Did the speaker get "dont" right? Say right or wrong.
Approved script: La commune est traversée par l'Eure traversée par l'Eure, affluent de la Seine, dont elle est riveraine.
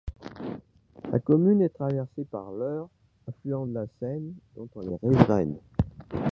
right